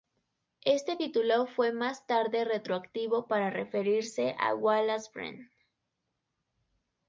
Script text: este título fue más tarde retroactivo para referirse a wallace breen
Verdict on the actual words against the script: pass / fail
pass